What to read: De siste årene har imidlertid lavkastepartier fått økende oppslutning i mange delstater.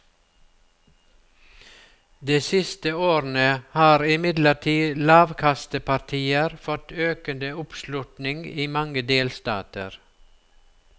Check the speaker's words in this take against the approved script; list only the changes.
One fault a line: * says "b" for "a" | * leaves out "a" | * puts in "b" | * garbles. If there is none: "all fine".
all fine